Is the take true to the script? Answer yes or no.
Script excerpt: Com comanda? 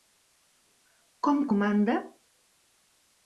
yes